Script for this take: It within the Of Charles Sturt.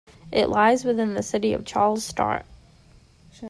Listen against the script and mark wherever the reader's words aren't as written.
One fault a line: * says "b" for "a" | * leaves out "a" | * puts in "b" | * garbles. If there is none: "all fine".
* puts in "lies"
* puts in "City"